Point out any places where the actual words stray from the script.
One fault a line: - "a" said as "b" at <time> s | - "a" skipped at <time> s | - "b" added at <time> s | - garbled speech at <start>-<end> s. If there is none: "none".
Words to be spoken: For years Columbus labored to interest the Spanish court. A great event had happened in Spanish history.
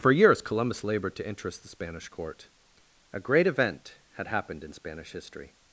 none